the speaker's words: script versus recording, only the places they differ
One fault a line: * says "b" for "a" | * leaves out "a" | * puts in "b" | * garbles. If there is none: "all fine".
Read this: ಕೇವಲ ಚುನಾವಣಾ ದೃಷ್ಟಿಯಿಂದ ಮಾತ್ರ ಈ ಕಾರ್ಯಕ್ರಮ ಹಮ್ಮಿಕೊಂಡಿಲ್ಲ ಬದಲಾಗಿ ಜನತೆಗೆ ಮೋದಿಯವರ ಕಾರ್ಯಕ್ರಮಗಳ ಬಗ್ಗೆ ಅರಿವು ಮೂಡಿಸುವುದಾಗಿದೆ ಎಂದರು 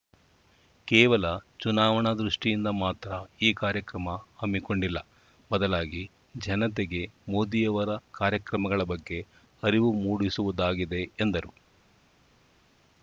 all fine